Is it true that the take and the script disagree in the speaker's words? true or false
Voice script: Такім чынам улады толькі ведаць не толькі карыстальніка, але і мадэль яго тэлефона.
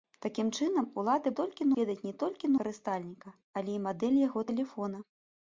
false